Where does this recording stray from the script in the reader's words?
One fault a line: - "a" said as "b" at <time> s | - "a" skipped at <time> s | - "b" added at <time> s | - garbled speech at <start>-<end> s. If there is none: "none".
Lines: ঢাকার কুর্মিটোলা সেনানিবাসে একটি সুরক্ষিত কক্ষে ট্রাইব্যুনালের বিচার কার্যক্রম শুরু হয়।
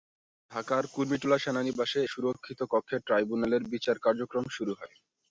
- "একটি" skipped at 2.0 s